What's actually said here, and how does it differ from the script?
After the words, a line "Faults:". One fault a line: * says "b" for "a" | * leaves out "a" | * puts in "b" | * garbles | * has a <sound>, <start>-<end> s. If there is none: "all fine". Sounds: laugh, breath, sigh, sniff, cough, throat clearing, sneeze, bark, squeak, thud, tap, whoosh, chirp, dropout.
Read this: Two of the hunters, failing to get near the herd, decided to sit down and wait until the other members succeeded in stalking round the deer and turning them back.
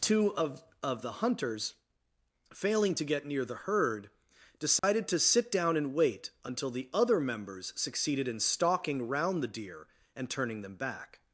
Two of of the hunters, failing to get near the herd, decided to sit down and wait until the other members succeeded in stalking round the deer and turning them back.
Faults:
* puts in "of"
* has a dropout, 4.8-4.8 s